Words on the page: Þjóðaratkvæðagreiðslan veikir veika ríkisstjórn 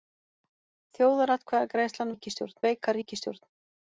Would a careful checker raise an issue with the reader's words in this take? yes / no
yes